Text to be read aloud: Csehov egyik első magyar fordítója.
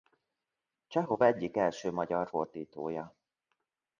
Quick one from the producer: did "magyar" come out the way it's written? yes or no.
yes